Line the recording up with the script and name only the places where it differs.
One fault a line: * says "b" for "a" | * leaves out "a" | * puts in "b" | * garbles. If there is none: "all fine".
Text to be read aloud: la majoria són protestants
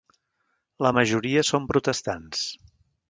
all fine